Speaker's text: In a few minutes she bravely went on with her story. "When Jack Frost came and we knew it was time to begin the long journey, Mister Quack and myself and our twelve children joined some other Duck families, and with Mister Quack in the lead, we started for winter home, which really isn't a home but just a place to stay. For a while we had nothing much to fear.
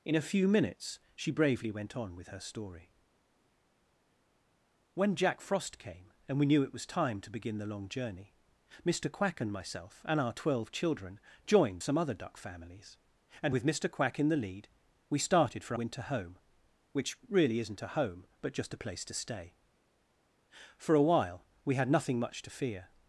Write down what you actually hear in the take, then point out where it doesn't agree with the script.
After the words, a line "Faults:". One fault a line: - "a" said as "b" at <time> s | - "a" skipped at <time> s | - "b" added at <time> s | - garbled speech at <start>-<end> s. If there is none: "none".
In a few minutes she bravely went on with her story. "When Jack Frost came and we knew it was time to begin the long journey, Mister Quack and myself and our twelve children joined some other Duck families, and with Mister Quack in the lead, we started for winter home, which really isn't a home but just a place to stay. For a while we had nothing much to fear.
Faults:
none